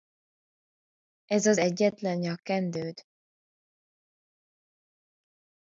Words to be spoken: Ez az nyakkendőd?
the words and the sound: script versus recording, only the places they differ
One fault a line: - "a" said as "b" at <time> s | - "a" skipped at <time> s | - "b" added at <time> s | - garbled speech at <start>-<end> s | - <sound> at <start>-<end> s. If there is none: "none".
- "egyetlen" added at 1.6 s